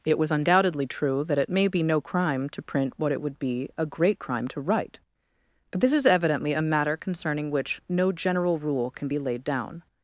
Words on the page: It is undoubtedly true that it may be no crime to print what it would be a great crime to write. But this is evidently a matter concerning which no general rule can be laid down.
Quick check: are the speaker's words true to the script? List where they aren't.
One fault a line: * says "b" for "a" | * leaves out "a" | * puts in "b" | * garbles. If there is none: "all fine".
* says "was" for "is"